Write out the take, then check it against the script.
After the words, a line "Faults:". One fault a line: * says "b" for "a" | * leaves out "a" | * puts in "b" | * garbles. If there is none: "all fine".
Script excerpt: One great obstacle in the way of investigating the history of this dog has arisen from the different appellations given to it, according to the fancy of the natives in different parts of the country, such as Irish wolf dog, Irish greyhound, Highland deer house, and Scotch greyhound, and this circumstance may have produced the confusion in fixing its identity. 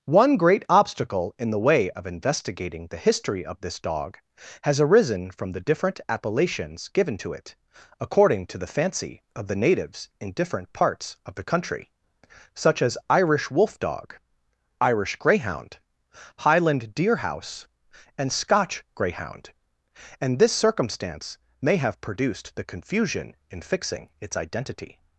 One great obstacle in the way of investigating the history of this dog has arisen from the different appellations given to it, according to the fancy of the natives in different parts of the country, such as Irish wolf dog, Irish greyhound, Highland deer house, and Scotch greyhound, and this circumstance may have produced the confusion in fixing its identity.
Faults:
all fine